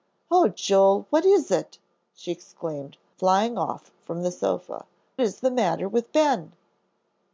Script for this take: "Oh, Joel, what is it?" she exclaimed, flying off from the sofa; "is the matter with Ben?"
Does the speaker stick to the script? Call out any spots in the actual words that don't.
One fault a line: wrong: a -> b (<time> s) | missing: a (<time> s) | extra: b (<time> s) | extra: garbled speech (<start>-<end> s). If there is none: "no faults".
no faults